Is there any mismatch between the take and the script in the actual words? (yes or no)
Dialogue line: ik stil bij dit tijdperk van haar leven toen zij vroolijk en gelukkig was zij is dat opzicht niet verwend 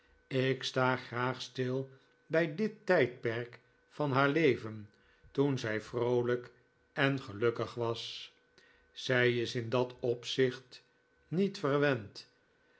yes